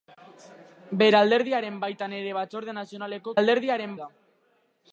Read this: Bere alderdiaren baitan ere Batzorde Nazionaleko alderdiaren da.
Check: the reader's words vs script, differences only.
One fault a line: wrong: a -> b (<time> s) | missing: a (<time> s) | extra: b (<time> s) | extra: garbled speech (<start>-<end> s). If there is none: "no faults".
no faults